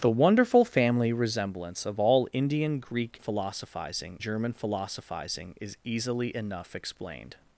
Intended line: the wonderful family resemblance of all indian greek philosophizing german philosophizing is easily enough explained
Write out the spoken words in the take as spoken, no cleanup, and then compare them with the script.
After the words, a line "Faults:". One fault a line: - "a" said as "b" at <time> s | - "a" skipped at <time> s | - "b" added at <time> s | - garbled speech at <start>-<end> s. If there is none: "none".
the wonderful family resemblance of all indian greek philosophizing german philosophizing is easily enough explained
Faults:
none